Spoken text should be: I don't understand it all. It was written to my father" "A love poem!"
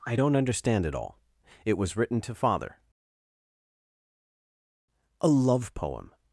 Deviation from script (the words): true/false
true